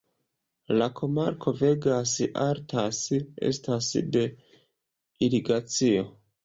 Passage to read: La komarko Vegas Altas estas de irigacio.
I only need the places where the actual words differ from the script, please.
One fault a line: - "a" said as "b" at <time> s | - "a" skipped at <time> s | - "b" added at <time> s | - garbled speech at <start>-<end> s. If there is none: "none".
none